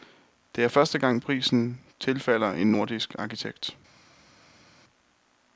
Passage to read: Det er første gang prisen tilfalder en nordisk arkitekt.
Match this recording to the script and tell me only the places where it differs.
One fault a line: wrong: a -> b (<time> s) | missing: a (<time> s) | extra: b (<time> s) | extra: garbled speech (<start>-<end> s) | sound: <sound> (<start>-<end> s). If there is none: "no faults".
no faults